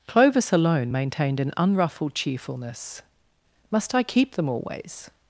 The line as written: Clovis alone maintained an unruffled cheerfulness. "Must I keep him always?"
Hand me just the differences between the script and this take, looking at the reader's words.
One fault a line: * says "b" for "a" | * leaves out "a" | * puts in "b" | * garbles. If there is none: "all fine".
* says "them" for "him"